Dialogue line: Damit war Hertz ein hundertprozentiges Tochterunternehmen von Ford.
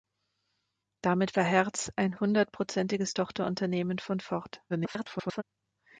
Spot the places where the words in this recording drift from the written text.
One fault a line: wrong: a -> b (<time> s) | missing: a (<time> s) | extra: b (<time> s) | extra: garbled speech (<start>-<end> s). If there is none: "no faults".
extra: garbled speech (4.7-5.4 s)